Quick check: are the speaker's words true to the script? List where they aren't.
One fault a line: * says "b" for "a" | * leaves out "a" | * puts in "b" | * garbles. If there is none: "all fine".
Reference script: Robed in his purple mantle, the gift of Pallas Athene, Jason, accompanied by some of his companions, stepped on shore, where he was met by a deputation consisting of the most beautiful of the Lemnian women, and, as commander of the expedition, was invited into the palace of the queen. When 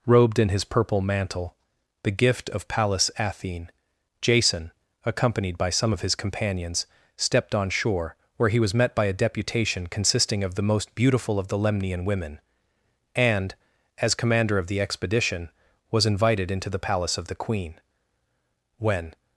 all fine